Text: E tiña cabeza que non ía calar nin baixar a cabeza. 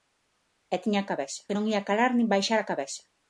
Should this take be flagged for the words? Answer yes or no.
no